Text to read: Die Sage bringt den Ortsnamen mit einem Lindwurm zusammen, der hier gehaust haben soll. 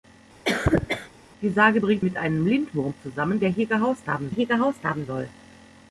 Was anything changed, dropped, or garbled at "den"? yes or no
yes